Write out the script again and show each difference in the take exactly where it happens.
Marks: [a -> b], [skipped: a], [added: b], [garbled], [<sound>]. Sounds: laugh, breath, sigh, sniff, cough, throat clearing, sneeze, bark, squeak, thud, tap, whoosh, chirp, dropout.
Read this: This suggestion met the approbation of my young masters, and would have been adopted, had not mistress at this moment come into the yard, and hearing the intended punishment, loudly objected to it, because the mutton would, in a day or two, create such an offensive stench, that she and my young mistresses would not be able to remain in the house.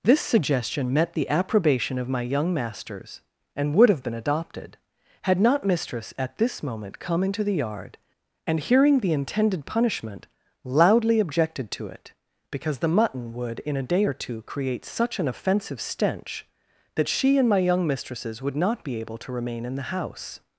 This suggestion met the approbation of my young masters, and would have been adopted, had not mistress at this moment come into the yard, and hearing the intended punishment, loudly objected to it, because the mutton would, in a day or two, create such an offensive stench, that she and my young mistresses would not be able to remain in the house.